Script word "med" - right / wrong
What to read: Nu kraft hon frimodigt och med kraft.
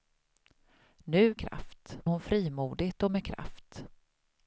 right